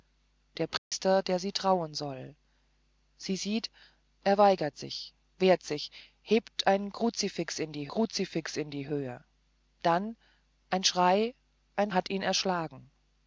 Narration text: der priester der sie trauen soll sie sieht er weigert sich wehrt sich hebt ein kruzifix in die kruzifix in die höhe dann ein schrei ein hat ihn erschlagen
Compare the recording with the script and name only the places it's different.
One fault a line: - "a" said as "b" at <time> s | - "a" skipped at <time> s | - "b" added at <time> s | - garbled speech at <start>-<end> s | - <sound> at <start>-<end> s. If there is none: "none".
- dropout at 0.8-0.9 s